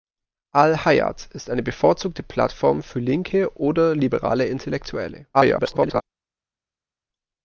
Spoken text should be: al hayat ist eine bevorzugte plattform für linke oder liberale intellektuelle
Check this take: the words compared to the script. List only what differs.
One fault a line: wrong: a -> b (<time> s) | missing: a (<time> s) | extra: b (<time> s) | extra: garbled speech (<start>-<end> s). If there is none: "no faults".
extra: garbled speech (5.3-6.0 s)